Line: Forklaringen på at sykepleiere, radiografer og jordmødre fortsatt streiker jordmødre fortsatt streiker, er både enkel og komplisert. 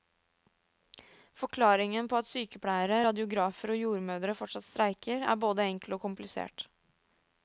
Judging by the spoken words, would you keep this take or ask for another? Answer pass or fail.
fail